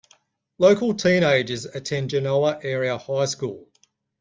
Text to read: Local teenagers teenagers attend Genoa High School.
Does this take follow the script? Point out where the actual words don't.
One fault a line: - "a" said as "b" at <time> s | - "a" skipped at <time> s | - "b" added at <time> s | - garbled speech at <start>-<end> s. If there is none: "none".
- "teenagers" skipped at 1.6 s
- "Area" added at 2.6 s